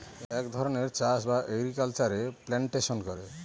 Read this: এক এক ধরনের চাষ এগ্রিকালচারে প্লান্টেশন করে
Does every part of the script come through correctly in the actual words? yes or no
no